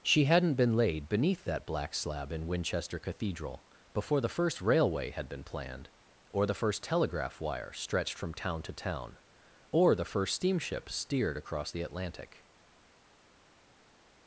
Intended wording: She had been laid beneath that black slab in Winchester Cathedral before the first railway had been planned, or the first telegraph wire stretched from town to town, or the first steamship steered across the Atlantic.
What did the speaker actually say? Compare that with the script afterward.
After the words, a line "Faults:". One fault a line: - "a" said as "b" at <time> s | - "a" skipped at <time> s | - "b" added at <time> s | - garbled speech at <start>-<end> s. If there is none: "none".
She hadn't been laid beneath that black slab in Winchester Cathedral before the first railway had been planned, or the first telegraph wire stretched from town to town, or the first steamship steered across the Atlantic.
Faults:
- "had" said as "hadn't" at 0.2 s